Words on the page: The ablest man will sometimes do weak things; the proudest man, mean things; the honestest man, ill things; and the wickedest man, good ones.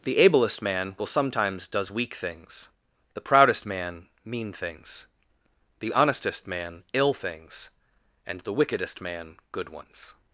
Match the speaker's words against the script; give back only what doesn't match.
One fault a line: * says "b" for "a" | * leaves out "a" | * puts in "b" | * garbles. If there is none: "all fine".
* says "does" for "do"